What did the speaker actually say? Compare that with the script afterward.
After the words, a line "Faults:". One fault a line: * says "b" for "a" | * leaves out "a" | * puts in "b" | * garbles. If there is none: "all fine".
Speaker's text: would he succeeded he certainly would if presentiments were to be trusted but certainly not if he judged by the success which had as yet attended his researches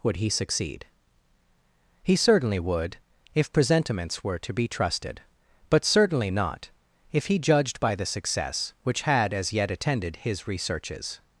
would he succeed he certainly would if presentiments were to be trusted but certainly not if he judged by the success which had as yet attended his researches
Faults:
* says "succeed" for "succeeded"